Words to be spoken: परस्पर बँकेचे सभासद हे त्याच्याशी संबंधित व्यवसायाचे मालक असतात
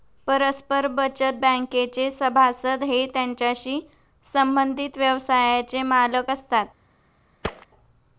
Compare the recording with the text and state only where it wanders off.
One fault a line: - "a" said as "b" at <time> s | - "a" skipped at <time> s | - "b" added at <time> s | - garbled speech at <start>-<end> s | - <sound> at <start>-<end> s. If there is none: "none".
- "बचत" added at 0.9 s
- thud at 7.4-7.7 s